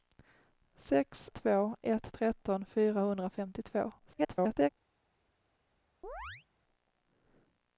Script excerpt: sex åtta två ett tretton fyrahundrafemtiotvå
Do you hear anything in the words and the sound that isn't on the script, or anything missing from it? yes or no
yes